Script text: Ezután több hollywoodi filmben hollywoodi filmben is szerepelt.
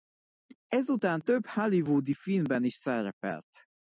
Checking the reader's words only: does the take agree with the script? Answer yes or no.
no